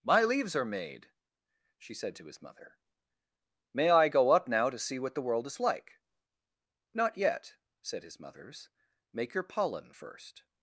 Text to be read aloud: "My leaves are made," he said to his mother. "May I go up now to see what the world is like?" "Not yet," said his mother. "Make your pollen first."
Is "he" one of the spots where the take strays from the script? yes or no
yes